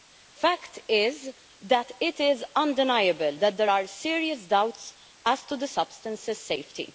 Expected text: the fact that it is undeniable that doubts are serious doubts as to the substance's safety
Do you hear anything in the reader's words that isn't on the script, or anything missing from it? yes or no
yes